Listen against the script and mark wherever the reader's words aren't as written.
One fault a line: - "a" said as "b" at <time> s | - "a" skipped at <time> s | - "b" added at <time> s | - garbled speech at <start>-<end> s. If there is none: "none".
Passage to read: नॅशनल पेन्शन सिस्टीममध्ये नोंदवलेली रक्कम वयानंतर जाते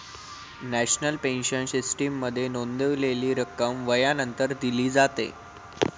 - "दिली" added at 4.6 s